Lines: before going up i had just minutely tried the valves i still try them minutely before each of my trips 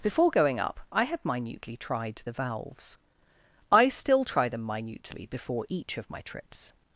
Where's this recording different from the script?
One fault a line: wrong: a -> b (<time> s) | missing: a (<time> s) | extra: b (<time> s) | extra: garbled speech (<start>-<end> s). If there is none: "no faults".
missing: just (1.2 s)